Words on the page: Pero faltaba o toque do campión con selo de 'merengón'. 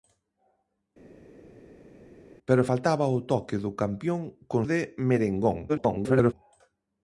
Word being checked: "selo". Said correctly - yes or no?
no